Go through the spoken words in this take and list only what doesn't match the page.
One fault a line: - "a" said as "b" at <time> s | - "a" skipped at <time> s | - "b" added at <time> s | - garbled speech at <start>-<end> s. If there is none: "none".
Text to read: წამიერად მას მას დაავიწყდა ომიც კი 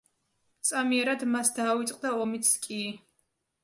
- "მას" skipped at 1.5 s